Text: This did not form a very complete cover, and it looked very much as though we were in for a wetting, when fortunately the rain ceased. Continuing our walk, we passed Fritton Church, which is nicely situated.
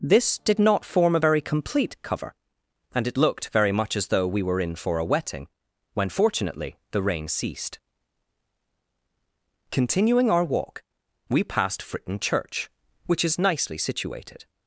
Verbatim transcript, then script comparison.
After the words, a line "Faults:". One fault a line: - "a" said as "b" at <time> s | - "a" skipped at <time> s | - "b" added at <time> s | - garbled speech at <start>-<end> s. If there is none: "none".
This did not form a very complete cover, and it looked very much as though we were in for a wetting, when fortunately the rain ceased. Continuing our walk, we passed Fritton Church, which is nicely situated.
Faults:
none